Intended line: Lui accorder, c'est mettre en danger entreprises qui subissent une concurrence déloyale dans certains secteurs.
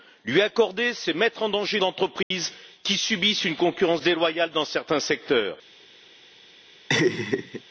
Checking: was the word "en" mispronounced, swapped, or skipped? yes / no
no